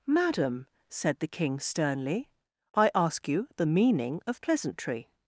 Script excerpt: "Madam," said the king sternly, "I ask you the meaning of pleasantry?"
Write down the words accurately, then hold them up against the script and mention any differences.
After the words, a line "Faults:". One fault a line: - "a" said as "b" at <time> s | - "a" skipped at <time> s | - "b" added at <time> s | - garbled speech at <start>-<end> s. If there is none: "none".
"Madam," said the king sternly, "I ask you the meaning of pleasantry?"
Faults:
none